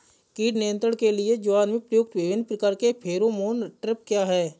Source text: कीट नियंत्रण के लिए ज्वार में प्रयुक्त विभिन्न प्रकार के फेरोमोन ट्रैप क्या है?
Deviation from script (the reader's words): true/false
false